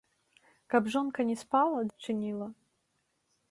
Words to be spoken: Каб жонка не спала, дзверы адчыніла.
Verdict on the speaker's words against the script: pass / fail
fail